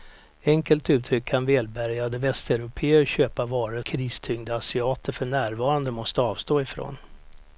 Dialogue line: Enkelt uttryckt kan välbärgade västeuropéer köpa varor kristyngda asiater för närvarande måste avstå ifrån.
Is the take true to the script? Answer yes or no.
yes